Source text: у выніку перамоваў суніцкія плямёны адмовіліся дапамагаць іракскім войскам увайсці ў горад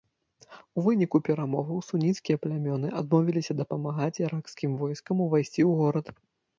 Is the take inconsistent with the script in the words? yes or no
no